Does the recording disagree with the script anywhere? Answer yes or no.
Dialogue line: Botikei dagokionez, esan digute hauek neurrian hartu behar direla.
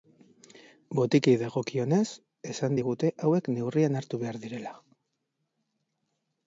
no